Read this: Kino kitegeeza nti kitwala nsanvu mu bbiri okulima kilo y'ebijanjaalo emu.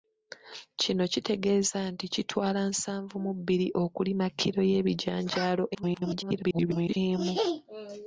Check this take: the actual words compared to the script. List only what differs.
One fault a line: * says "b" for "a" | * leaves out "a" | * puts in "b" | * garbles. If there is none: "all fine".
* garbles